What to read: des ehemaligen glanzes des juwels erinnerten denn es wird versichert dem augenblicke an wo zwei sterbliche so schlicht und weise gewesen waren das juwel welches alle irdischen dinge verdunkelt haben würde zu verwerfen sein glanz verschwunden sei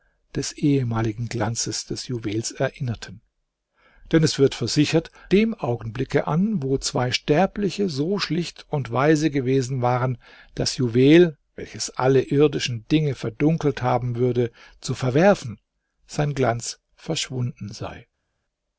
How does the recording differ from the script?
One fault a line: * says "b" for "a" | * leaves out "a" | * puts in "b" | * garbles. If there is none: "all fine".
all fine